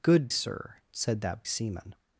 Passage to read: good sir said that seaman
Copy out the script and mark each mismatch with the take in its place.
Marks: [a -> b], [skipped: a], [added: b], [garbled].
good sir said that seaman